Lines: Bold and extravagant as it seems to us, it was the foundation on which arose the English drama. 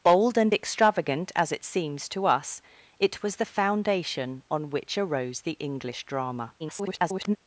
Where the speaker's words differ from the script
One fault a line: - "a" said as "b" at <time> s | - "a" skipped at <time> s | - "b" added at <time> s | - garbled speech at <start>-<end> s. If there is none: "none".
- garbled speech at 6.6-7.4 s